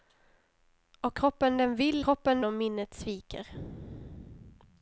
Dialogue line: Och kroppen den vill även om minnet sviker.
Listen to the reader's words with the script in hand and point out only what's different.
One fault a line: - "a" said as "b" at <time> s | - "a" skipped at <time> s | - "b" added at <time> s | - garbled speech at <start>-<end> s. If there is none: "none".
- "även" said as "kroppen" at 2.0 s